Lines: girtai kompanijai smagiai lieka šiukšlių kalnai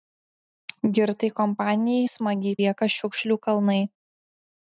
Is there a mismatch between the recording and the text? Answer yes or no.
no